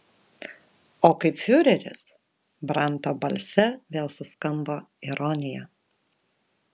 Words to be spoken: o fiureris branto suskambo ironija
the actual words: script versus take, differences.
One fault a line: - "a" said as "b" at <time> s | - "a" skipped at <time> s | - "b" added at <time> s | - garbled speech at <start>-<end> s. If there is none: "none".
- "kaip" added at 1.2 s
- "balse vėl" added at 3.2 s